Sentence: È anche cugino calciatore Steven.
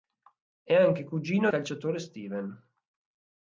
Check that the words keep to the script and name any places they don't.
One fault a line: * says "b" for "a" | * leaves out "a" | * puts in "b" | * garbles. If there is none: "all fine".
all fine